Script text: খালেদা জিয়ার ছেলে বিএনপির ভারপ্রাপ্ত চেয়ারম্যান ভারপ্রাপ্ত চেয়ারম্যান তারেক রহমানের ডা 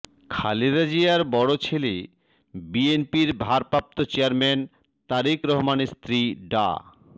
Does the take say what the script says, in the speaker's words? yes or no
no